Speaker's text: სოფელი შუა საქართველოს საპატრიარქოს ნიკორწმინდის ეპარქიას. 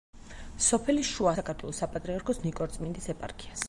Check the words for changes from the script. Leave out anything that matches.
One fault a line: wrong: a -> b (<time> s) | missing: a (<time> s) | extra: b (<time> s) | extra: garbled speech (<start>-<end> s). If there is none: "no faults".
no faults